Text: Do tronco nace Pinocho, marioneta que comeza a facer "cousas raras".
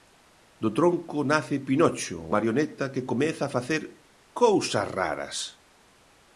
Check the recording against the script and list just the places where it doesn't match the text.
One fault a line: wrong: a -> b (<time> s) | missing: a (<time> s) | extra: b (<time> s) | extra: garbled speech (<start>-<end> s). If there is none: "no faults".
no faults